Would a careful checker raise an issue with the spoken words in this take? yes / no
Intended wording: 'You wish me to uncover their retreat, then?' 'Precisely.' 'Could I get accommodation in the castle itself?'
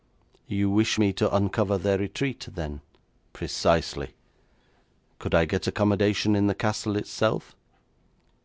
no